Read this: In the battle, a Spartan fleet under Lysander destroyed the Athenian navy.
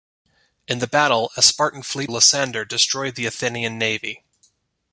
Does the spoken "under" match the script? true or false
false